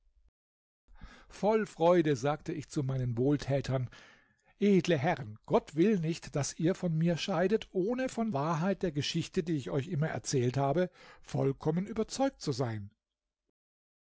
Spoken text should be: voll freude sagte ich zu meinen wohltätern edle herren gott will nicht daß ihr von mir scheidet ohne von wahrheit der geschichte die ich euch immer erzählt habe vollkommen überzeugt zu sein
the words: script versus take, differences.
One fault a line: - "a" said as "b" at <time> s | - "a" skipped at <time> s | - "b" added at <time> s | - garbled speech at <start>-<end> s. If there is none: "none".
none